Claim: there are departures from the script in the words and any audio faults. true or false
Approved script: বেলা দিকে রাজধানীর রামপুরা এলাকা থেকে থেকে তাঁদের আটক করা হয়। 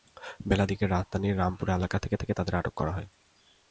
false